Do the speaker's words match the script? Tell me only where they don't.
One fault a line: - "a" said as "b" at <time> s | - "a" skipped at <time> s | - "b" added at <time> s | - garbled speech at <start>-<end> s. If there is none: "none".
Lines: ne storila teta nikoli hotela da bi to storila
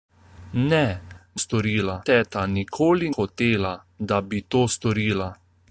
none